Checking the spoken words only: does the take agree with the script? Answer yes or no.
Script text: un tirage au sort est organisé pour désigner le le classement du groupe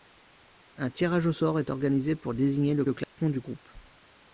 yes